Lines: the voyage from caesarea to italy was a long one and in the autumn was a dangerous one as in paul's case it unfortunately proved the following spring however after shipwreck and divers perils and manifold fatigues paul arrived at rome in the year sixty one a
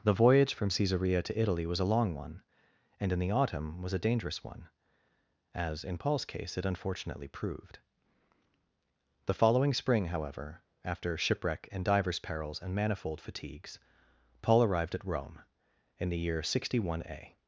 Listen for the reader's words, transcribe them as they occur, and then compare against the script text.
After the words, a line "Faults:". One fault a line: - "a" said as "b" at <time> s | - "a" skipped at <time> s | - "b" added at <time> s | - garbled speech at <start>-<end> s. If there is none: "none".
the voyage from caesarea to italy was a long one and in the autumn was a dangerous one as in paul's case it unfortunately proved the following spring however after shipwreck and divers perils and manifold fatigues paul arrived at rome in the year sixty one a
Faults:
none